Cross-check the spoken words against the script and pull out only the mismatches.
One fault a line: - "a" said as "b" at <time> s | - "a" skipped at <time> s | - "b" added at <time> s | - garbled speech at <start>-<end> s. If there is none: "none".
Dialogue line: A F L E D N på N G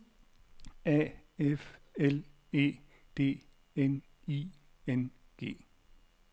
- "på" said as "I" at 4.3 s